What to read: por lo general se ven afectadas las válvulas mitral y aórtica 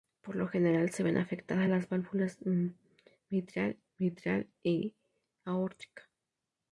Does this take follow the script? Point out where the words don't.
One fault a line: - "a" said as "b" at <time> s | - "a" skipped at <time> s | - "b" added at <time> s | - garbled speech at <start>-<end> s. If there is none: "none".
- "mitral" added at 4.0 s